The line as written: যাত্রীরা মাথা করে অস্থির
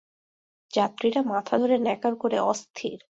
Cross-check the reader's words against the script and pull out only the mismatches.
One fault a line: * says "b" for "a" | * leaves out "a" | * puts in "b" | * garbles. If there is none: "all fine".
* puts in "ধরে ন্যাকার"